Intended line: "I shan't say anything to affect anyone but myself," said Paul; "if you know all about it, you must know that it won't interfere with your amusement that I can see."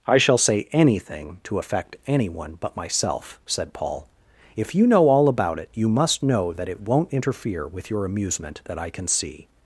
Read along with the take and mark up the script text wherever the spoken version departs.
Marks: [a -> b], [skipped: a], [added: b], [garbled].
"I [shan't -> shall] say anything to affect anyone but myself," said Paul; "if you know all about it, you must know that it won't interfere with your amusement that I can see."